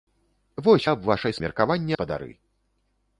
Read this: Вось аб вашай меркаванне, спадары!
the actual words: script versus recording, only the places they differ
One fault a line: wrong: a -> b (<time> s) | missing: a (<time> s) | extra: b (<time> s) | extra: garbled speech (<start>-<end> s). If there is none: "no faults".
no faults